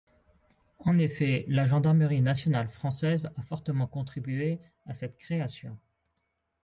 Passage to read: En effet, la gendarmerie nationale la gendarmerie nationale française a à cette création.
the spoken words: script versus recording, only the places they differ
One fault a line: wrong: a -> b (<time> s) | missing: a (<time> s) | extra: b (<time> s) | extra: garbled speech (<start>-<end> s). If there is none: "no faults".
wrong: la gendarmerie nationale française a -> française a fortement contribué (2.7 s)